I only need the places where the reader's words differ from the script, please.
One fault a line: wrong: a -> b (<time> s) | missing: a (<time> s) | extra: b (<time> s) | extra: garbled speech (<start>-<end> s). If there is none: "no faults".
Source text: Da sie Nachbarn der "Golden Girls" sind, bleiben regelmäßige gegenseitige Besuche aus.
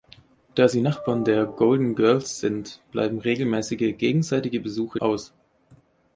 no faults